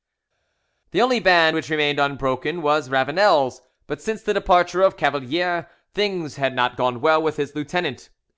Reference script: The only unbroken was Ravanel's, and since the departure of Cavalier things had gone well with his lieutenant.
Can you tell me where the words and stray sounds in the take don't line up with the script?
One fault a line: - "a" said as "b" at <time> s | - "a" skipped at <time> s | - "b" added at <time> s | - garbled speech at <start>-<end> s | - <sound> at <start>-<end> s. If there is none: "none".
- "band which remained" added at 1.2 s
- "and" said as "but" at 3.9 s
- "not" added at 6.6 s